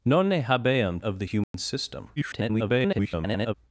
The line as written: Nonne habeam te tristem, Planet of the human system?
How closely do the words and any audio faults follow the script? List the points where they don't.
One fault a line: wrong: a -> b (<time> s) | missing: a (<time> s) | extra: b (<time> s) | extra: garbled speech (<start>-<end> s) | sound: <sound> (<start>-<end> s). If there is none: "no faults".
missing: te tristem Planet (1.0 s)
sound: dropout (1.4-1.5 s)
extra: garbled speech (2.2-3.5 s)